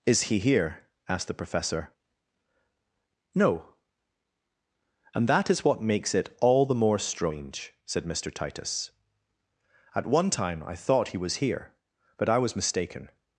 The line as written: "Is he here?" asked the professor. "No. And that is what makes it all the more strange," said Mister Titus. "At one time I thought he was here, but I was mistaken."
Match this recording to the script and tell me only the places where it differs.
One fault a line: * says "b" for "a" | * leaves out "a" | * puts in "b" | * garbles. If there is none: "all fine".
all fine